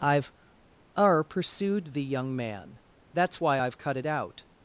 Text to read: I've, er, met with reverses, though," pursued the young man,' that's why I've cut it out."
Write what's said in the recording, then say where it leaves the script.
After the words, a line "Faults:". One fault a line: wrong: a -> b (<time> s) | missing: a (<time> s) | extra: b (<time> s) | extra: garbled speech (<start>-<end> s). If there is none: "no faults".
I've, er," pursued the young man,' that's why I've cut it out."
Faults:
missing: met with reverses though (1.2 s)